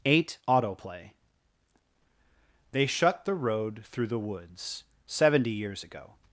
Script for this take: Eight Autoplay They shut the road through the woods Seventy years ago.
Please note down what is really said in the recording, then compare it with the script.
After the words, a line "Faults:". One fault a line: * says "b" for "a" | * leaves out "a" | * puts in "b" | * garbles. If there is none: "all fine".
Eight Autoplay They shut the road through the woods Seventy years ago.
Faults:
all fine